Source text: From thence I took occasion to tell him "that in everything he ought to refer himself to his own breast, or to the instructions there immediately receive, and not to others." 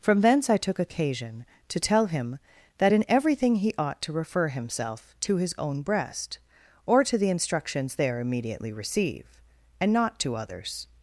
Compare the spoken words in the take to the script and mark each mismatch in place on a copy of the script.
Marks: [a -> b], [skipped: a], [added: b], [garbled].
From thence I took occasion to tell him "that in everything he ought to refer himself to his own breast, or to the instructions there immediately receive, and not to others."